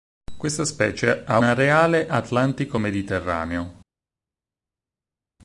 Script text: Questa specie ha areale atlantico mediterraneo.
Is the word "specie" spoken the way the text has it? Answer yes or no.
yes